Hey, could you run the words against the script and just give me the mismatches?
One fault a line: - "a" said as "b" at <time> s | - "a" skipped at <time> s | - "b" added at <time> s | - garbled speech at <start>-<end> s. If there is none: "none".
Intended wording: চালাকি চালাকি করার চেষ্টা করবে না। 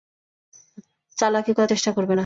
- "চালাকি" skipped at 1.5 s